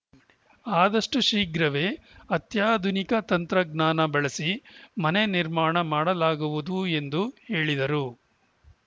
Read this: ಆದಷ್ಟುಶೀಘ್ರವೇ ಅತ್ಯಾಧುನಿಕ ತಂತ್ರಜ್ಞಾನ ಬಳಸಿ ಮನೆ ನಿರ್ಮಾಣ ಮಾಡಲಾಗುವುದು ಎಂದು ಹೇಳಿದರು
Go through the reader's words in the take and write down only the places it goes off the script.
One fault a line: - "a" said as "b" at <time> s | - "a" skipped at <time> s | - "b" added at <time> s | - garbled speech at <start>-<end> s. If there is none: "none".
none